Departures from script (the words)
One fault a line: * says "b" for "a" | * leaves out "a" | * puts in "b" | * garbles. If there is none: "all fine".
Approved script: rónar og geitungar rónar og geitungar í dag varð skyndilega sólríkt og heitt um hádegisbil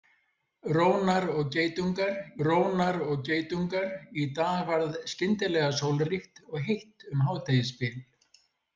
all fine